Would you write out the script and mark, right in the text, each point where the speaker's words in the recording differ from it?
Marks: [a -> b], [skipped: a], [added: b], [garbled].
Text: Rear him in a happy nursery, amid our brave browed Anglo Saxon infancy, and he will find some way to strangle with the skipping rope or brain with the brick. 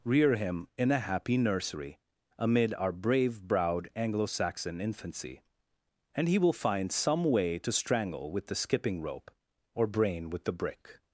Rear him in a happy nursery, amid our brave browed Anglo Saxon infancy, and he will find some way to strangle with the skipping rope or brain with the brick.